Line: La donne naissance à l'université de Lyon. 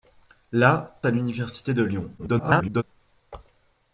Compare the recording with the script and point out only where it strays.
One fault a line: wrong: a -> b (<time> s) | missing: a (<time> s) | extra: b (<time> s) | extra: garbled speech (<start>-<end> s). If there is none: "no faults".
missing: donne naissance (1.0 s)
extra: garbled speech (2.2-2.8 s)